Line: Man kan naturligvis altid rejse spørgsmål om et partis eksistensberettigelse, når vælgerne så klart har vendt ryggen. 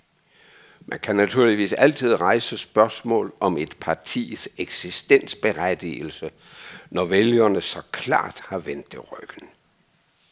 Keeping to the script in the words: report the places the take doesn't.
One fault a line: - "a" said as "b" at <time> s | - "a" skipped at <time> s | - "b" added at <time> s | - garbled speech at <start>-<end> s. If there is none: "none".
- "det" added at 8.9 s